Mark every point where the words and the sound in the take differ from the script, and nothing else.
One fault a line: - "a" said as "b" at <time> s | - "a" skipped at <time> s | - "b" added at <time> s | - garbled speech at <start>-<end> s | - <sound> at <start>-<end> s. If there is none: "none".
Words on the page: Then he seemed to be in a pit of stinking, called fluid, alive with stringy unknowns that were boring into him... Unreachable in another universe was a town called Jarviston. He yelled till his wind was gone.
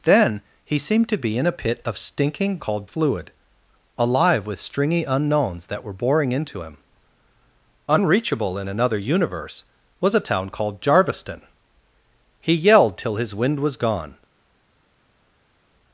none